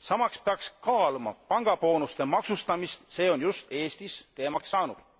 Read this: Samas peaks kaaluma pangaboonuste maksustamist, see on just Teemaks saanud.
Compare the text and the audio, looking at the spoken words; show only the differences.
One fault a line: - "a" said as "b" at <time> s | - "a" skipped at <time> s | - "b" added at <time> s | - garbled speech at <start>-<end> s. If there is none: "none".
- "Eestis" added at 3.7 s